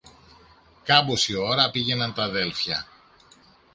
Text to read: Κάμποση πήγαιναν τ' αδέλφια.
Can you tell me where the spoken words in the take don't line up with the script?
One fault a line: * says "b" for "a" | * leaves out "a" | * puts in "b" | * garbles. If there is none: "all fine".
* puts in "ώρα"